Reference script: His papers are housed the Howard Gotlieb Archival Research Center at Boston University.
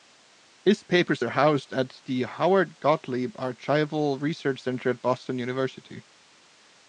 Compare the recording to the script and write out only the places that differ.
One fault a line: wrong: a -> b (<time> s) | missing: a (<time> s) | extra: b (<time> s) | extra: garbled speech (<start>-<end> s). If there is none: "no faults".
extra: at (1.7 s)